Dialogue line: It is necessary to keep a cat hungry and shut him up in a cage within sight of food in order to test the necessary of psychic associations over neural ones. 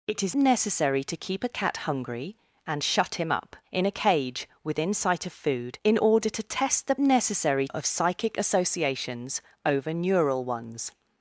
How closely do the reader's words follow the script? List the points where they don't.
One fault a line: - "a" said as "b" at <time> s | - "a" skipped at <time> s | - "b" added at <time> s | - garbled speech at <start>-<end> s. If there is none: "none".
none